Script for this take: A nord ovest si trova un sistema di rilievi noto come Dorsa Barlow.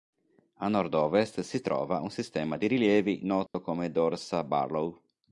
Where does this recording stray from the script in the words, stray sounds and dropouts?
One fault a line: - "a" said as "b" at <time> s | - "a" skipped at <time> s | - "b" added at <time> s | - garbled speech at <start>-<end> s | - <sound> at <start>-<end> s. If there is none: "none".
- dropout at 3.5-3.5 s